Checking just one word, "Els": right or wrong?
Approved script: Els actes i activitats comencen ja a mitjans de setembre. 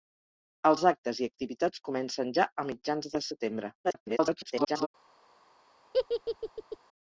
right